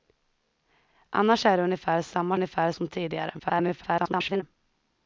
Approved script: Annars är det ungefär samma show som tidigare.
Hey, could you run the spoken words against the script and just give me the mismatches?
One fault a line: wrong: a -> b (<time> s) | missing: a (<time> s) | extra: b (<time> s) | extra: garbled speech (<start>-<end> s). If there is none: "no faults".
wrong: show -> ungefär (2.3 s)
extra: garbled speech (3.4-4.4 s)